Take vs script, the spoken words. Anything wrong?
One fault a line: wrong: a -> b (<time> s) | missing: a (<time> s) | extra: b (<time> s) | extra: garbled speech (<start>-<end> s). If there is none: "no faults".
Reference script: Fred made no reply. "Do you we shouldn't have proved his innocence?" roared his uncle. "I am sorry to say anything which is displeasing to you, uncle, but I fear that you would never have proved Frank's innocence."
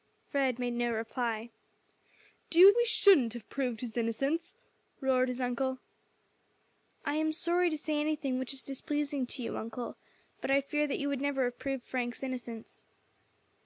no faults